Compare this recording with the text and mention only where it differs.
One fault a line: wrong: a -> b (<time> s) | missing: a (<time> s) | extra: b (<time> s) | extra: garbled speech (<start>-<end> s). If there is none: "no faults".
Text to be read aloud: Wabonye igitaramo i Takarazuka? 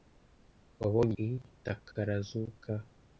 missing: igitaramo (1.1 s)